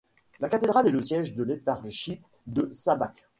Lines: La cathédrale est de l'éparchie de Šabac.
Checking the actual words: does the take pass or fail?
fail